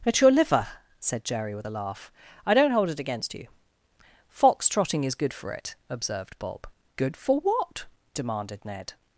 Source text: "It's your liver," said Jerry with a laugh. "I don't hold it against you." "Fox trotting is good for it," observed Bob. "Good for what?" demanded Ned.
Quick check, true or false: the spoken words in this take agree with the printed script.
true